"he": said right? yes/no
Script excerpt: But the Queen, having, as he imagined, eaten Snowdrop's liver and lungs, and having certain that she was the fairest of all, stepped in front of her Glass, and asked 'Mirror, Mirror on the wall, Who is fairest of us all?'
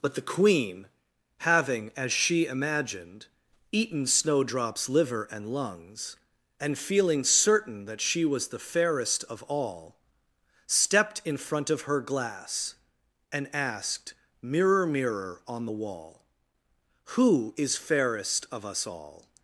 no